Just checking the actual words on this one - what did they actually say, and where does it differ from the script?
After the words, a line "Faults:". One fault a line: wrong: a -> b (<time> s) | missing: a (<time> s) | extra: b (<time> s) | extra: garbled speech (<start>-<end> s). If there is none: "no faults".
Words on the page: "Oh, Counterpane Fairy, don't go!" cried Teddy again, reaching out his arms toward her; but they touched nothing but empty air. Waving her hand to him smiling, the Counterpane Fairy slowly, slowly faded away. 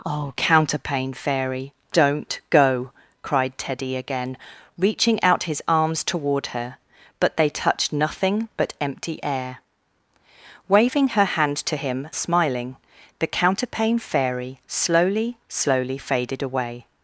"Oh, Counterpane Fairy, don't go!" cried Teddy again, reaching out his arms toward her; but they touched nothing but empty air. Waving her hand to him smiling, the Counterpane Fairy slowly, slowly faded away.
Faults:
no faults